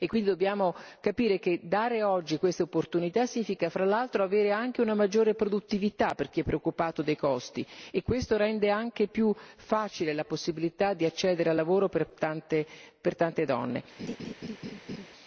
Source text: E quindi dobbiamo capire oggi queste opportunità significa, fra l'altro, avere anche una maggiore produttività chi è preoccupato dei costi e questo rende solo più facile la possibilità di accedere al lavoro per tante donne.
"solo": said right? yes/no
no